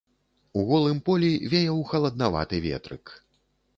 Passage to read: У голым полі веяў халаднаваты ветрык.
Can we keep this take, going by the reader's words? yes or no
yes